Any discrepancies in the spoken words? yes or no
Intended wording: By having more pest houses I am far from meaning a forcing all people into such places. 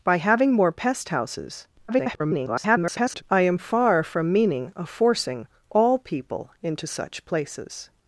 yes